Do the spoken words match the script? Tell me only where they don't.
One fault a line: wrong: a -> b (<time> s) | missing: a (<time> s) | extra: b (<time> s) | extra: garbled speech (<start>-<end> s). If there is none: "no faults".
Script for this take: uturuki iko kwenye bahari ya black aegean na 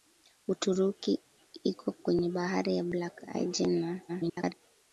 extra: garbled speech (4.1-4.5 s)